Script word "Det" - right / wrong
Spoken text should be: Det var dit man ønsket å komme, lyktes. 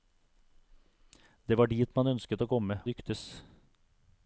right